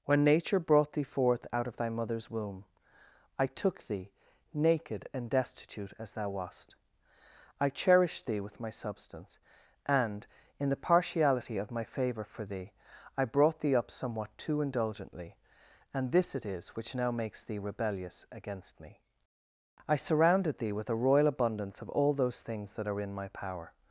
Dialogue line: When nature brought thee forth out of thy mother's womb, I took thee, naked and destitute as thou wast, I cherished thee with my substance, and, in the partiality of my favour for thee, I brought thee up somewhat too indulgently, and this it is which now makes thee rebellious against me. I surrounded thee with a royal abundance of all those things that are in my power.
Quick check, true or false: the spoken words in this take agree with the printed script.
true